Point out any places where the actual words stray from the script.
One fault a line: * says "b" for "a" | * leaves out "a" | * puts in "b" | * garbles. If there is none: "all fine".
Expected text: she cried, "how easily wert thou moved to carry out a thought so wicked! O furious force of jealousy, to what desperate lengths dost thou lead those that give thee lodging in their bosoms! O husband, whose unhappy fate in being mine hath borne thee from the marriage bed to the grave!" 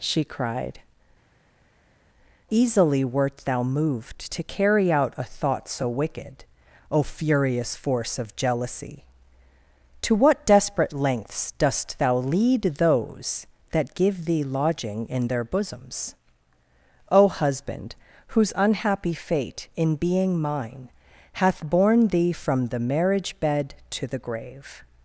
* leaves out "how"